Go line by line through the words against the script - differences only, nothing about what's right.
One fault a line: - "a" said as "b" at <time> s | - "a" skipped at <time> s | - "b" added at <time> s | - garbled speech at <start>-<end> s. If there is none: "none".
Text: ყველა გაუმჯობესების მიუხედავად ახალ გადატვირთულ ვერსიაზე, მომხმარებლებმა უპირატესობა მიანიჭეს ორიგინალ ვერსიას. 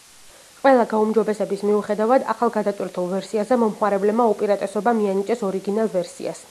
none